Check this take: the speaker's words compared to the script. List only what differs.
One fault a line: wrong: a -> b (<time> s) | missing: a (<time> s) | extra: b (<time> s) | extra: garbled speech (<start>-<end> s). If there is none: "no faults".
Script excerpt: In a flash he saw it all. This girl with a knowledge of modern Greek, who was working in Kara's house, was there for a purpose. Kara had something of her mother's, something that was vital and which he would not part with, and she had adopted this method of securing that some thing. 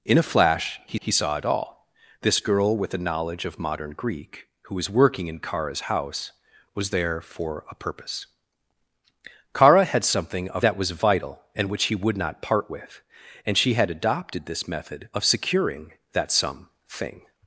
extra: he (1.0 s)
missing: her mother's something (10.7 s)